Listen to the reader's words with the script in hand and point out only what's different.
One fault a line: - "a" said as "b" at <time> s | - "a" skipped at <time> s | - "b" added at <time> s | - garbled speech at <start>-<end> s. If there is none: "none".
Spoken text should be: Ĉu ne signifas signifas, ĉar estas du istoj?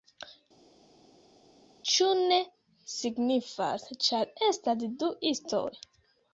- "signifas" skipped at 3.9 s